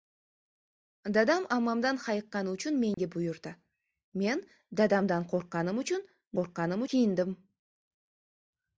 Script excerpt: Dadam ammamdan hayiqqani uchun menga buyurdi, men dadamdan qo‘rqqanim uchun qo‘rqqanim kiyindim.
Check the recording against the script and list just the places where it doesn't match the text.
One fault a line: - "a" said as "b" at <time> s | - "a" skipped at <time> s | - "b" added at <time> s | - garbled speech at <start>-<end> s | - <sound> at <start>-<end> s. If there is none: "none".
- dropout at 2.9-3.0 s